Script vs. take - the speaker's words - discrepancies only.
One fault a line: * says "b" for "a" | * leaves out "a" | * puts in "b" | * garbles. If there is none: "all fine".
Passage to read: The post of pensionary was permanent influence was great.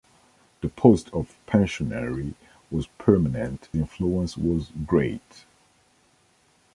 all fine